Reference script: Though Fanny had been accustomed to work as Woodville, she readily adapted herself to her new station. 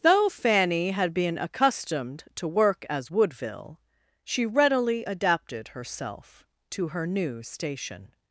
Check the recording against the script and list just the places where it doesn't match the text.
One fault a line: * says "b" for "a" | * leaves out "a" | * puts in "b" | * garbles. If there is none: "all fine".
all fine